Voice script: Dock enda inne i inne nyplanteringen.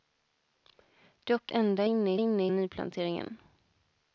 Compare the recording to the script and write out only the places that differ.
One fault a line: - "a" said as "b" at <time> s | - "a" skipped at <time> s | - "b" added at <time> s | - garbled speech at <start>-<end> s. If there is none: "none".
none